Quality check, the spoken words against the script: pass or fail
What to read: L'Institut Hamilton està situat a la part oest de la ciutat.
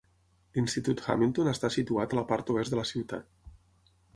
pass